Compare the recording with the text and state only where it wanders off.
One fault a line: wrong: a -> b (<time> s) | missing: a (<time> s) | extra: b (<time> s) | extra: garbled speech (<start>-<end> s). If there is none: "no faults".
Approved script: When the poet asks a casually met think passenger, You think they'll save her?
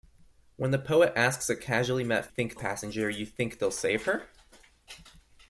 no faults